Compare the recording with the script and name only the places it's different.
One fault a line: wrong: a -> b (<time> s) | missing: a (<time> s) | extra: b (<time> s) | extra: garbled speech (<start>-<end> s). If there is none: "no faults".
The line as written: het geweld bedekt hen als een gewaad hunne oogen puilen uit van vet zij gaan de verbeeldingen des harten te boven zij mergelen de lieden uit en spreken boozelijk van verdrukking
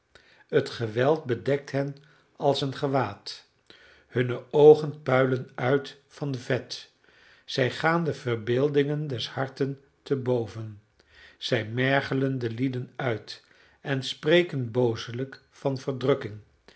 no faults